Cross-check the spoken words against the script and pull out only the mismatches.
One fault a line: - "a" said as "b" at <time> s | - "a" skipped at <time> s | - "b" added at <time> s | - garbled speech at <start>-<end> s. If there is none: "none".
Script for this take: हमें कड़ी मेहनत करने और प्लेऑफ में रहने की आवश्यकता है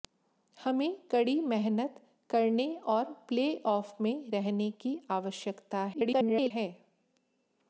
- garbled speech at 5.9-6.5 s